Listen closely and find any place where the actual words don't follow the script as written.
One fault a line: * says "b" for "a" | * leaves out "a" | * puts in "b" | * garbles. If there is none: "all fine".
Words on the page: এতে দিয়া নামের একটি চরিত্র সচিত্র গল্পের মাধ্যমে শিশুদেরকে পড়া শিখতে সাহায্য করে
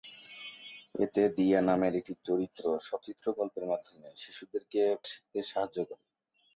* leaves out "পড়া"